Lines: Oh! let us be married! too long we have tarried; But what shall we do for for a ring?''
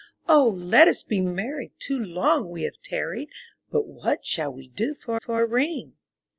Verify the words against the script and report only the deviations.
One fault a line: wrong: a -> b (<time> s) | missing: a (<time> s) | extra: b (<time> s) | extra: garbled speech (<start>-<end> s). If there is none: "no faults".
no faults